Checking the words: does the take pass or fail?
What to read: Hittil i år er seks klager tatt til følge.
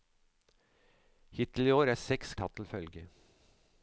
fail